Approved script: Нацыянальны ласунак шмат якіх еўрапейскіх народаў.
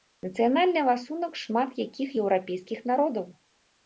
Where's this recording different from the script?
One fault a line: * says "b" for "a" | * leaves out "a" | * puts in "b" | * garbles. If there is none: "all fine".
all fine